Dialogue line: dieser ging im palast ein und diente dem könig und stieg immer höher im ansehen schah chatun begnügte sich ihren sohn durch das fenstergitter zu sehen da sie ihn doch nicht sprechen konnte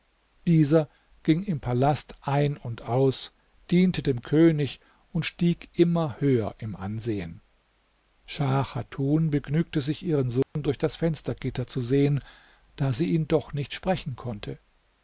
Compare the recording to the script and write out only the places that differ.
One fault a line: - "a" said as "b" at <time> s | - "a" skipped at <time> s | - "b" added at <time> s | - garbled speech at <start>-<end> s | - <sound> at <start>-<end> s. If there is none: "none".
- "aus" added at 2.8 s
- dropout at 10.4-10.6 s